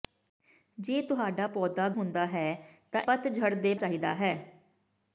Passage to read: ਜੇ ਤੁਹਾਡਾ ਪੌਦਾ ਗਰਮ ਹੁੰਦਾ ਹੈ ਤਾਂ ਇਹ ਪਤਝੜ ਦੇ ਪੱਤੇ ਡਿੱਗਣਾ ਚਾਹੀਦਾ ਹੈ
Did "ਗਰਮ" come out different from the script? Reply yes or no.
yes